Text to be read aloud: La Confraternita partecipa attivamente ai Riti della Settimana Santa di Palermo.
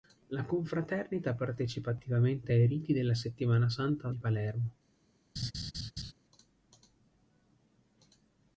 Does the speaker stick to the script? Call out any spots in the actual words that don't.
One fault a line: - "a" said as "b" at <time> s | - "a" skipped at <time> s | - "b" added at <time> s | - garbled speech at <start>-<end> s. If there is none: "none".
none